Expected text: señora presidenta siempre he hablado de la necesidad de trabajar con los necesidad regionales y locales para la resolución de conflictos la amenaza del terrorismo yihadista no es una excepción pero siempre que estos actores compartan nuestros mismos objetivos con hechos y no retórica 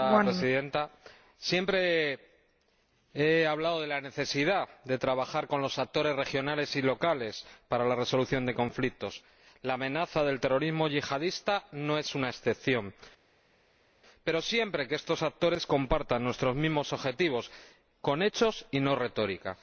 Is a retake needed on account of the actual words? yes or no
yes